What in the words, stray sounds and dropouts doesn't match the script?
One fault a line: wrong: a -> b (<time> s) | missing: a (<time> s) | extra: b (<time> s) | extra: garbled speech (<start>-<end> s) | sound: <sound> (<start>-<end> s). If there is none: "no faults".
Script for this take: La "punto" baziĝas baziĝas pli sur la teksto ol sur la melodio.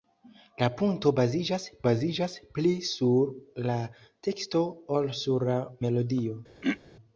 sound: throat clearing (6.6-6.8 s)